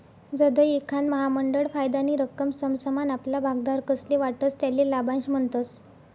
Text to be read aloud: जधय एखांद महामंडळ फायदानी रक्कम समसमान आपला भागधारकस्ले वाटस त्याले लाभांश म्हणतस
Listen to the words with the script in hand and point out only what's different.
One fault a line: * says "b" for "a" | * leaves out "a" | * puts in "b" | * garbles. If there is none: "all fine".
all fine